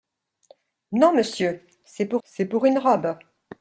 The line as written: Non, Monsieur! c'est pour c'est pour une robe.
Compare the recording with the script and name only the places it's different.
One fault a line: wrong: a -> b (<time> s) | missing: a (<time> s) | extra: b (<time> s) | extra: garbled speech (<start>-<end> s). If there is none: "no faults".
no faults